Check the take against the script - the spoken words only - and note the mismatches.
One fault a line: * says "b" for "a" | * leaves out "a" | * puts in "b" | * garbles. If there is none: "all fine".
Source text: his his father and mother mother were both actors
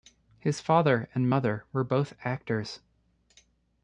* leaves out "his"
* leaves out "mother"